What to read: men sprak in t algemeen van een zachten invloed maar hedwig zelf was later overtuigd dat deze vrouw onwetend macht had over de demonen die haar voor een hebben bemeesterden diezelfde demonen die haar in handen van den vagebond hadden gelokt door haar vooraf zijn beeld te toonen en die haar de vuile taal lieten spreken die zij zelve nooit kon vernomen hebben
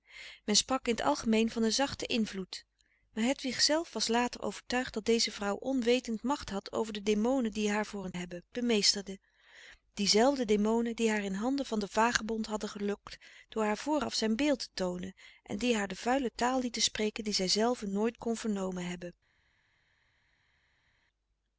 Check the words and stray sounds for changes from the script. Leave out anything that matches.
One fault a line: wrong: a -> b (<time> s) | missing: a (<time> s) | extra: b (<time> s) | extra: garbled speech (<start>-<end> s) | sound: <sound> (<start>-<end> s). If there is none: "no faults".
no faults